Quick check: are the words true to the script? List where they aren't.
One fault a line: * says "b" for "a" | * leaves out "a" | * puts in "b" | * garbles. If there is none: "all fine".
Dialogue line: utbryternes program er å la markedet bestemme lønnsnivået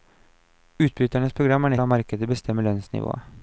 all fine